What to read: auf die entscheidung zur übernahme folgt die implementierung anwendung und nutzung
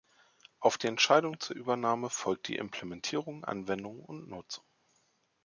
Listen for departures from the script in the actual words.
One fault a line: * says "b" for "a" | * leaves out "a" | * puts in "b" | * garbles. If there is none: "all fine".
all fine